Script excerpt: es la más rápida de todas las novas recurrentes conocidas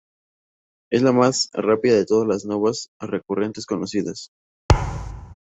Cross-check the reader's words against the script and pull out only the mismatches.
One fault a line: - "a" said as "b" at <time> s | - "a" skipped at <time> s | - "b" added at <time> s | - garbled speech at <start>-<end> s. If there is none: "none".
none